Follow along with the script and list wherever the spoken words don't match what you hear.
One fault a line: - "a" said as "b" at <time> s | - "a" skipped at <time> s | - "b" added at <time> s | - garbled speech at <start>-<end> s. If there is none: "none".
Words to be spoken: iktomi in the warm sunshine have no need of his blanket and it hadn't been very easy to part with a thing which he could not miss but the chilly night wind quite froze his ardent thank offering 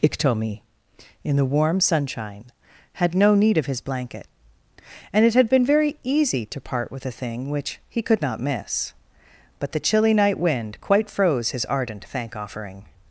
- "have" said as "had" at 2.9 s
- "hadn't" said as "had" at 5.3 s